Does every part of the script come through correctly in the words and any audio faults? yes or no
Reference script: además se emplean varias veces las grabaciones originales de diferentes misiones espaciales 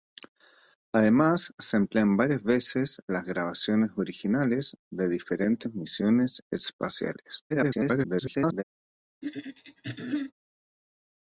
no